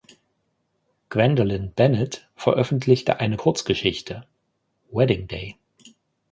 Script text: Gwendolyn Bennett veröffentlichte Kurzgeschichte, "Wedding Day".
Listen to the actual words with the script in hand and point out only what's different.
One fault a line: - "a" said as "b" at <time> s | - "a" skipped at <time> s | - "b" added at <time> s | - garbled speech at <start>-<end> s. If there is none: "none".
- "eine" added at 3.2 s